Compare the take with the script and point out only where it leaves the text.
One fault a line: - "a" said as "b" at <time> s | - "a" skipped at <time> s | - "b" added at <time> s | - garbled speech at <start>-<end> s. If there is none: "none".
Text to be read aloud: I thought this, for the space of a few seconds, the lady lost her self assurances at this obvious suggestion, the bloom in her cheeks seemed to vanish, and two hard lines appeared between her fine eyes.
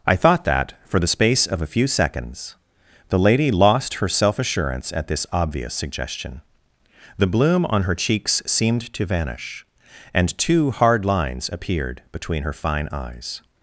- "this" said as "that" at 0.5 s
- "assurances" said as "assurance" at 4.4 s
- "in" said as "on" at 7.6 s